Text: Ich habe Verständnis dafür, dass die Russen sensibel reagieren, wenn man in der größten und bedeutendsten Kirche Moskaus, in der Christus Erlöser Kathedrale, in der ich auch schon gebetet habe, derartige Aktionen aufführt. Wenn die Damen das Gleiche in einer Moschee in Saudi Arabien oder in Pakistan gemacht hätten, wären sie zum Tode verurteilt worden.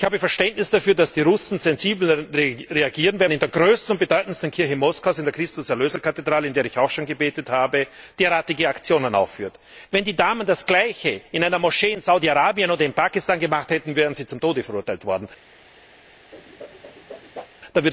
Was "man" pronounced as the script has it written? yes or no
no